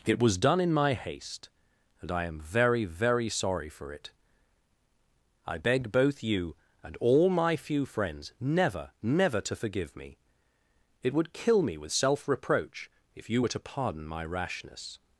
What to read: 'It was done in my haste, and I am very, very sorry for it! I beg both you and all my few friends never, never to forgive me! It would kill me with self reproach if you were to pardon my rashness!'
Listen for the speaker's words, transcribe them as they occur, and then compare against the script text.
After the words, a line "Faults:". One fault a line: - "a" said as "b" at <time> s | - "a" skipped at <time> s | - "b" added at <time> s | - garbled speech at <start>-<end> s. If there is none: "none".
'It was done in my haste, and I am very, very sorry for it! I beg both you and all my few friends never, never to forgive me! It would kill me with self reproach if you were to pardon my rashness!'
Faults:
none